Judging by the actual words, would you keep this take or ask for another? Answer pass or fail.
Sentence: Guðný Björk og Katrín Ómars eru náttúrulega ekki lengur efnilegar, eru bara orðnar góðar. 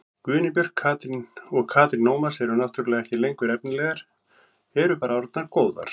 pass